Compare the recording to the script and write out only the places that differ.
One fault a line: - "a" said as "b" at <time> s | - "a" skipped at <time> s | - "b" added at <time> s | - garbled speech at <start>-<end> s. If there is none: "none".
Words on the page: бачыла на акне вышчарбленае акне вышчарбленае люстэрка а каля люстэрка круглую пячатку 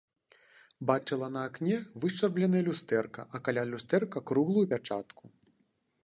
- "акне вышчарбленае" skipped at 2.6 s